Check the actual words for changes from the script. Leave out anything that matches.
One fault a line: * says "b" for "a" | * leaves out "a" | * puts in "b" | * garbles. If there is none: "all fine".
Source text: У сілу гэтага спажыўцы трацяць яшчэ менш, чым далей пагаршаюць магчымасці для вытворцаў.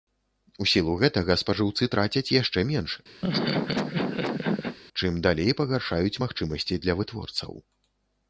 all fine